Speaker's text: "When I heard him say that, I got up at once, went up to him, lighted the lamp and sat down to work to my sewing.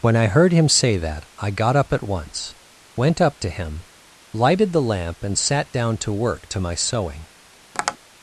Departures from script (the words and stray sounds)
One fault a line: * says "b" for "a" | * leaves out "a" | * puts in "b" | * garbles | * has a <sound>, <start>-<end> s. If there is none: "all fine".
* has a tap, 7.7-8.0 s